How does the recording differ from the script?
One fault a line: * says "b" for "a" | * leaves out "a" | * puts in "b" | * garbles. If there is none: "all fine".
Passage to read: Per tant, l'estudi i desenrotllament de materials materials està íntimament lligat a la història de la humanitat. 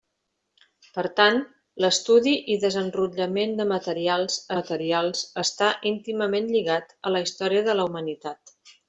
all fine